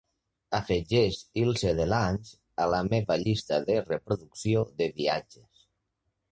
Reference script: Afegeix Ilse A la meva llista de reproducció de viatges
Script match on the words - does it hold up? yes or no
no